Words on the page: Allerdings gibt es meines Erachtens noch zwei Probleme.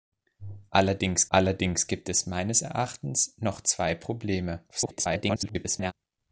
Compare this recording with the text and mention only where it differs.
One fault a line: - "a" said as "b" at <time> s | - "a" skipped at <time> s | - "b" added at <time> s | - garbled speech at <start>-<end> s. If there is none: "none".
- "allerdings" added at 1.3 s
- garbled speech at 4.7-5.9 s